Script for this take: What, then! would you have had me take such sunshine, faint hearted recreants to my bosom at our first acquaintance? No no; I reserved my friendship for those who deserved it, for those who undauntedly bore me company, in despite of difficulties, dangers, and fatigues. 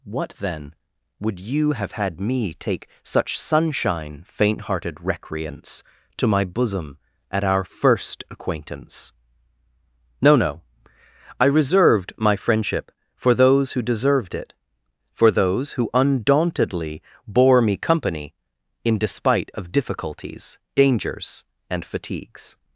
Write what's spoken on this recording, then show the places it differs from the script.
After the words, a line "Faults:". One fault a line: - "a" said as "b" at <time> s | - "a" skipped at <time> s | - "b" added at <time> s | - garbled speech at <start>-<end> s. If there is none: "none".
What, then! would you have had me take such sunshine, faint hearted recreants to my bosom at our first acquaintance? No no; I reserved my friendship for those who deserved it, for those who undauntedly bore me company, in despite of difficulties, dangers, and fatigues.
Faults:
none